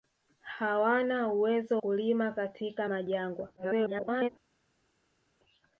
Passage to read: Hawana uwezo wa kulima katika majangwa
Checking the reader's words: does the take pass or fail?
fail